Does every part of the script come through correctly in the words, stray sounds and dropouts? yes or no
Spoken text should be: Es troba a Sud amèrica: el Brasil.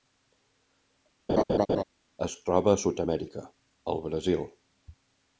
no